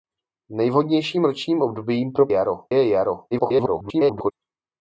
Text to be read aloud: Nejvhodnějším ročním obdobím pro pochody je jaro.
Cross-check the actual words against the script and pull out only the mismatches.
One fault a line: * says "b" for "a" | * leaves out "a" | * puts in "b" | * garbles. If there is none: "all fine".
* says "jaro" for "pochody"
* garbles